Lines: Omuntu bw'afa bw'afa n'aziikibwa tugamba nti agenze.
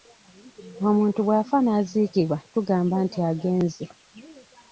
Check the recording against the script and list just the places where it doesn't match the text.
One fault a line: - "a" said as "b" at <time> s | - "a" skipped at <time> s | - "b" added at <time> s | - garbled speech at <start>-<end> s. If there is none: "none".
- "bw'afa" skipped at 1.6 s